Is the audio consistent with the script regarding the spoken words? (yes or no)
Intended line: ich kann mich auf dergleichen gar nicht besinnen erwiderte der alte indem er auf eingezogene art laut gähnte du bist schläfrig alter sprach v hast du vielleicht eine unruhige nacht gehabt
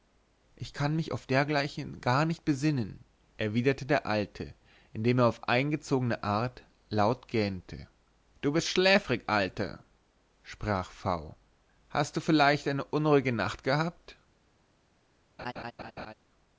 yes